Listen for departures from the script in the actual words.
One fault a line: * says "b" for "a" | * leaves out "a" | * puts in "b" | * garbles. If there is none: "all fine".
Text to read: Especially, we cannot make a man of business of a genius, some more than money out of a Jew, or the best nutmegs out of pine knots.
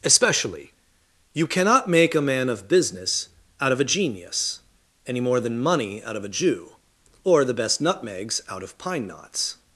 * says "you" for "we"
* puts in "out"
* says "any" for "some"